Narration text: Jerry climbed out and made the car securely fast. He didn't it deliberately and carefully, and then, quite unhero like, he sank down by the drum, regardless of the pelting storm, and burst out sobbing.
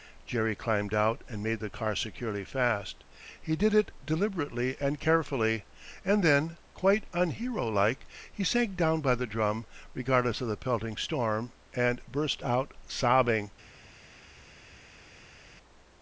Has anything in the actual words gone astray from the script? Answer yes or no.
yes